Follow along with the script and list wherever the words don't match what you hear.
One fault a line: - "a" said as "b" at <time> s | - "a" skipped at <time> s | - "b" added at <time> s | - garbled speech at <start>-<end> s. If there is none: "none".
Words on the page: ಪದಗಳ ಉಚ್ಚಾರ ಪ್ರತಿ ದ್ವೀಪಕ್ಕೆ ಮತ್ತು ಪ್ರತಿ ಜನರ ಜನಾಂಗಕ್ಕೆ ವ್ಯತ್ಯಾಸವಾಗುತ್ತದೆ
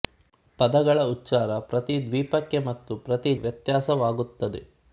- "ಜನರ ಜನಾಂಗಕ್ಕೆ" skipped at 3.3 s